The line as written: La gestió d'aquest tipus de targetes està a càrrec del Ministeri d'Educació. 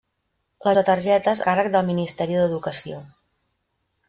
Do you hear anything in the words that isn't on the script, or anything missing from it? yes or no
yes